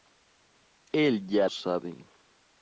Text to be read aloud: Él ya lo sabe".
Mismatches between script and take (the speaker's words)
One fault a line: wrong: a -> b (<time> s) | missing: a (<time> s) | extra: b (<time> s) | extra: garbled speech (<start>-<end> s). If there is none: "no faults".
missing: lo (1.5 s)